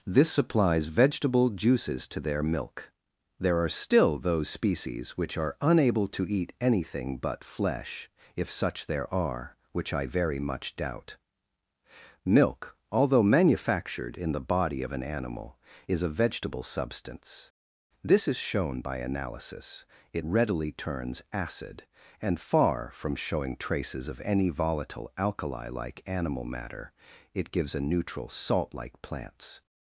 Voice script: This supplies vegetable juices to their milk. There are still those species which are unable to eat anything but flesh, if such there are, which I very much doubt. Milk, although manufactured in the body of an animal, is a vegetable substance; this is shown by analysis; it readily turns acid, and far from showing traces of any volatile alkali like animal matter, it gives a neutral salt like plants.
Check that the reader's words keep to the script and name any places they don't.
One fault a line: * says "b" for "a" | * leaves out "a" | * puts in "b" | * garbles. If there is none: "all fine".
all fine